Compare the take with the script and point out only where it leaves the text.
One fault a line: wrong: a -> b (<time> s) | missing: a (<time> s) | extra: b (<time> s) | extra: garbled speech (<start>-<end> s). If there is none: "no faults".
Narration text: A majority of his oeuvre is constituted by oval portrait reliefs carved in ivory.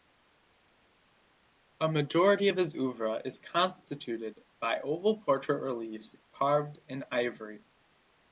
no faults